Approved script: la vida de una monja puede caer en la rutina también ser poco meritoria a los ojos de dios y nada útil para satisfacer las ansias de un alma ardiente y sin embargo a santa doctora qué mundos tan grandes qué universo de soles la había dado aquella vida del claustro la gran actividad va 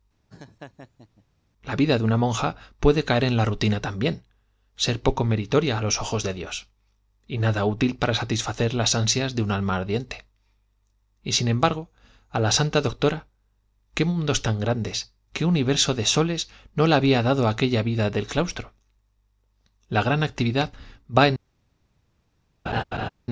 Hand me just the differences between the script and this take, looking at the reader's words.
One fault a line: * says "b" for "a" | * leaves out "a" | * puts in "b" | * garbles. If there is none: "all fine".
* puts in "la"
* puts in "no"